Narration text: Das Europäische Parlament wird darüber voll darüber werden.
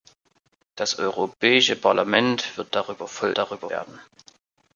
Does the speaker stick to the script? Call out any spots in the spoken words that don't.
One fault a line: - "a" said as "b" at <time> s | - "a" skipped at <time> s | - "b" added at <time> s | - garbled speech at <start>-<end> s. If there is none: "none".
none